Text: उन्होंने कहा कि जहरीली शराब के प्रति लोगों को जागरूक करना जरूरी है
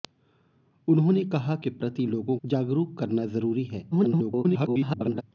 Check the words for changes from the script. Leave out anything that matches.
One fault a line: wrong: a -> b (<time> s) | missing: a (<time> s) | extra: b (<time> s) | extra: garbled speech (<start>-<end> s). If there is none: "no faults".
missing: कि जहरीली शराब (1.6 s)
missing: को (2.4 s)
extra: garbled speech (3.9-5.2 s)